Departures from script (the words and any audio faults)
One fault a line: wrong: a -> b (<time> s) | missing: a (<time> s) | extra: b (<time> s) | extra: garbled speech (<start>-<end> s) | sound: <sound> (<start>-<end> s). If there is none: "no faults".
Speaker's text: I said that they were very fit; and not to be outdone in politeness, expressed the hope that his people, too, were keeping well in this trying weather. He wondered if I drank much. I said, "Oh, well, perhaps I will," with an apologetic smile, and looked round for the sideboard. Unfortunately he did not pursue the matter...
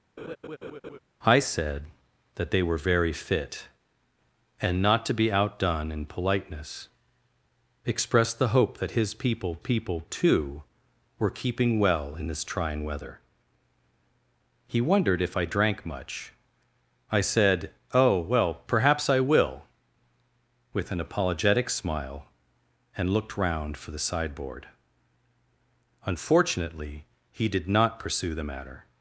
sound: laugh (0.2-1.0 s)
extra: people (9.6 s)